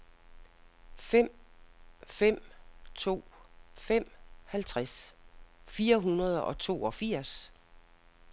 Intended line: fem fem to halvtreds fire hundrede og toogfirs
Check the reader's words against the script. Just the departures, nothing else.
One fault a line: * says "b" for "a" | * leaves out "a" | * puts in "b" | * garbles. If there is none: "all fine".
* puts in "fem"